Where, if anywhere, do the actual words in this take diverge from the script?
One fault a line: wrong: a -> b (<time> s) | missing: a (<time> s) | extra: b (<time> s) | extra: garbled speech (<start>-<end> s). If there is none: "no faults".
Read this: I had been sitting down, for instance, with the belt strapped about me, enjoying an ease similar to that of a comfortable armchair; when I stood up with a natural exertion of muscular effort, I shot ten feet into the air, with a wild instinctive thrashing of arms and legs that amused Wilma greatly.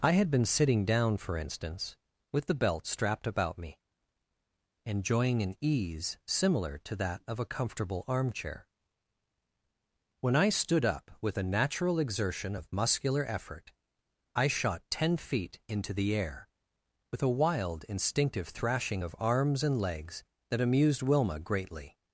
no faults